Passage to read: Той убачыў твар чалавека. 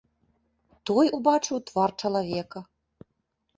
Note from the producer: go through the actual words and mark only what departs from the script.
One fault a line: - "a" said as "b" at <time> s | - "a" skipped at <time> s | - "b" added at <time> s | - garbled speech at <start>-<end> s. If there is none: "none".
none